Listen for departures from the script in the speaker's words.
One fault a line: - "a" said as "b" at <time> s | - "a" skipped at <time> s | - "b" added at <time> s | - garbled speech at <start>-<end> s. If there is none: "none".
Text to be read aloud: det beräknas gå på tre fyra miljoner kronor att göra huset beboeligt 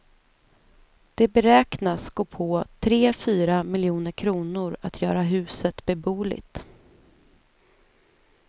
none